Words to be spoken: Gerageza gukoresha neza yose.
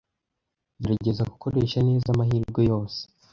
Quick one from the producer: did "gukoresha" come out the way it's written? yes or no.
yes